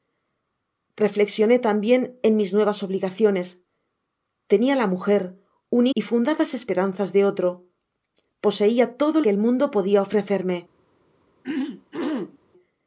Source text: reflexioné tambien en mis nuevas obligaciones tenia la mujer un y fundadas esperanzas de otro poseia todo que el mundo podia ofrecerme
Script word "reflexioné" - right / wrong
right